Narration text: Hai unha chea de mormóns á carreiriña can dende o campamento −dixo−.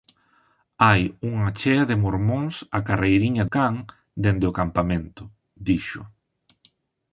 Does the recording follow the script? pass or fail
pass